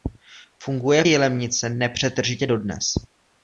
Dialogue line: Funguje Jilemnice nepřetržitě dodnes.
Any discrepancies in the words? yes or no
no